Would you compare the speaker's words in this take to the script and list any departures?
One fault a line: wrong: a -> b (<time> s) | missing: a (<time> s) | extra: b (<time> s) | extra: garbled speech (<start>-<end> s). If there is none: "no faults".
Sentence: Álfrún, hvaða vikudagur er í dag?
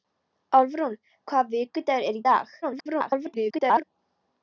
extra: garbled speech (2.6-3.8 s)